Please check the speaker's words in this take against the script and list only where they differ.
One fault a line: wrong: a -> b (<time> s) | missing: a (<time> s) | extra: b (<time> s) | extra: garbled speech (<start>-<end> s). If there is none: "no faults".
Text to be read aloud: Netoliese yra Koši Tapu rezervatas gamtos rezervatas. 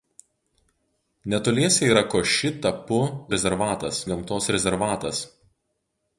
no faults